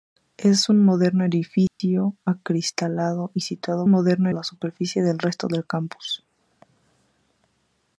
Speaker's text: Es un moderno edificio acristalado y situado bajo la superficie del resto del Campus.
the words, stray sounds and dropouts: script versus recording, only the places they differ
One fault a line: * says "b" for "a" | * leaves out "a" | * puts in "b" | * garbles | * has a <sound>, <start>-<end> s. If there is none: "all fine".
* has a dropout, 1.7-1.8 s
* says "moderno" for "bajo"